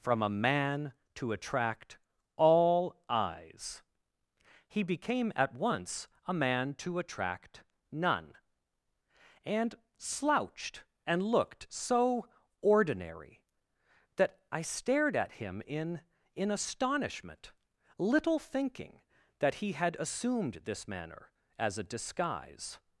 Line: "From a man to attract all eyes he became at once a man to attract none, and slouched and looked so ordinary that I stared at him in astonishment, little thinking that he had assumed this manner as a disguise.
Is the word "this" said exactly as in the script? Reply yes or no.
yes